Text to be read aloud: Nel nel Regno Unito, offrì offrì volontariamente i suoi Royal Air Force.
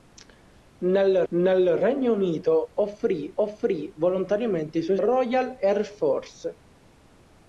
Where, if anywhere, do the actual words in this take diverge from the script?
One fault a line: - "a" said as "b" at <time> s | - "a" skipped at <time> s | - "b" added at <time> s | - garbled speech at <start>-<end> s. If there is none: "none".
none